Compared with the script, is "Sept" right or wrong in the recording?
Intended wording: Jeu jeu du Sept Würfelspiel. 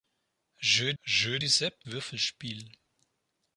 right